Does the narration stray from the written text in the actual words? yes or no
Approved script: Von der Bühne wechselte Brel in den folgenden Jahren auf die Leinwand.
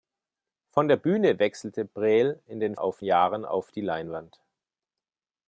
yes